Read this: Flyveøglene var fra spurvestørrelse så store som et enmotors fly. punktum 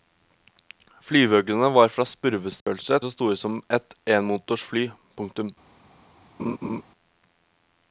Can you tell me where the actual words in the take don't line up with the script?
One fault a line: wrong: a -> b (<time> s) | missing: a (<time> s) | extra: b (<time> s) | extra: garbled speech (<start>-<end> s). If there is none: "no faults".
no faults